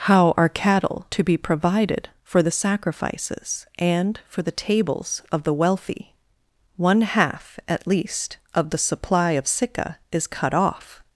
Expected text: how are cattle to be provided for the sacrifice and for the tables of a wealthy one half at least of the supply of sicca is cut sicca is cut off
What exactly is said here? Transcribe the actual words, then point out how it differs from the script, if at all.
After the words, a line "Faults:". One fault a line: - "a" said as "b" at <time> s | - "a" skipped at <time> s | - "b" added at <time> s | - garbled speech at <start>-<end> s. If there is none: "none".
how are cattle to be provided for the sacrifices and for the tables of the wealthy one half at least of the supply of sicca is cut off
Faults:
- "sacrifice" said as "sacrifices" at 2.5 s
- "a" said as "the" at 5.4 s
- "sicca is cut" skipped at 10.6 s